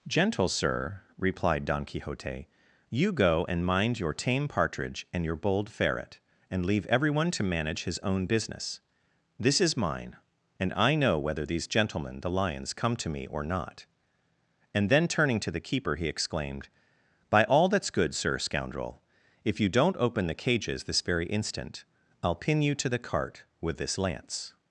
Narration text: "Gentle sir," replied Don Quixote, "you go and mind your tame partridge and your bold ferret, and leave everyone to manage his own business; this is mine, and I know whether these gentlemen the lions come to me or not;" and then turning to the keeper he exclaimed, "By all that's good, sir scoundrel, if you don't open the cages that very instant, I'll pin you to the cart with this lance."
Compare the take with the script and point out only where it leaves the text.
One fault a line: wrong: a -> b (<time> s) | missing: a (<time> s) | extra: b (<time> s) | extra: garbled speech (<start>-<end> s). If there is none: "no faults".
wrong: that -> this (20.9 s)